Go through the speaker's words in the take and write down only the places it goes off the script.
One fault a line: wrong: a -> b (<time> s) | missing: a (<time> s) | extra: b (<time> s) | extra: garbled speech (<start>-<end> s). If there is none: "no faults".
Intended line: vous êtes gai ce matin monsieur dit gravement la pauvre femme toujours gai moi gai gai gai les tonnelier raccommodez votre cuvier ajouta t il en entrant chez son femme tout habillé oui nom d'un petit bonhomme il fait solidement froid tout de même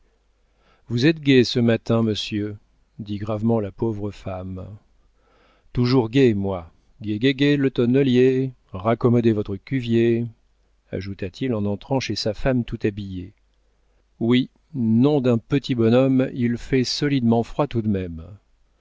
wrong: les -> le (7.5 s)
wrong: son -> sa (12.2 s)